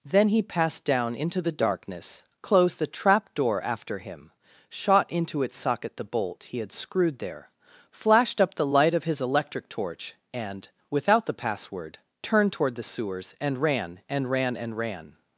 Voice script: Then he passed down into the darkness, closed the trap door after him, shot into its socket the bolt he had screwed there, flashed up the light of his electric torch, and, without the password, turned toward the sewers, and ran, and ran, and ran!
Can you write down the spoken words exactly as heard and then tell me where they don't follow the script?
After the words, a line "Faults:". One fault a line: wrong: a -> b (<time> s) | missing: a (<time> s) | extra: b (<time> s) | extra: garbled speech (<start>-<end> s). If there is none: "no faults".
Then he passed down into the darkness, closed the trap door after him, shot into its socket the bolt he had screwed there, flashed up the light of his electric torch, and, without the password, turned toward the sewers, and ran, and ran, and ran!
Faults:
no faults